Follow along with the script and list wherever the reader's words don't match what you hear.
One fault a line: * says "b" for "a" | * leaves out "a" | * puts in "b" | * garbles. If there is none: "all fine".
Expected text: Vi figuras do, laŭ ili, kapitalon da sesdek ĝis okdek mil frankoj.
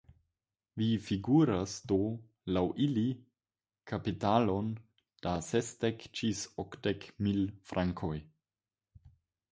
all fine